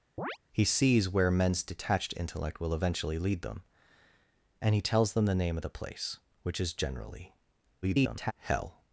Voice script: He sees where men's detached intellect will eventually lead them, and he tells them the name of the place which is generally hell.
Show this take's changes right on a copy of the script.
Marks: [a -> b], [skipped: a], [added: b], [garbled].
He sees where men's detached intellect will eventually lead them, and he tells them the name of the place which is generally [garbled] hell.